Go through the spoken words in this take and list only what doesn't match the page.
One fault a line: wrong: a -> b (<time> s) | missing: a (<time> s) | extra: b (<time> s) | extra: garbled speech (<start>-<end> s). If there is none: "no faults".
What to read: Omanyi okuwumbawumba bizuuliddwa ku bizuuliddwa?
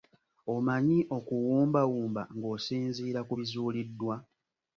wrong: bizuuliddwa -> ng'osinziira (2.4 s)